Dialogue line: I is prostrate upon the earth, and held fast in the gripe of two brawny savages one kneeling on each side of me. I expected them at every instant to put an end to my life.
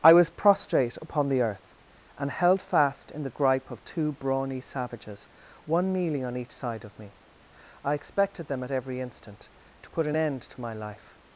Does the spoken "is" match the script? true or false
false